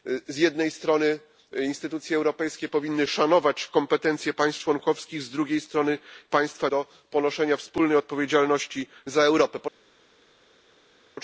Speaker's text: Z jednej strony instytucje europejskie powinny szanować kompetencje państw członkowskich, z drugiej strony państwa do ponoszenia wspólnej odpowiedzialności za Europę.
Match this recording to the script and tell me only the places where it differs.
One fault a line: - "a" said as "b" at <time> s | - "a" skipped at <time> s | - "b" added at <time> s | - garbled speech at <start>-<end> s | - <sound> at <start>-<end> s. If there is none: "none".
none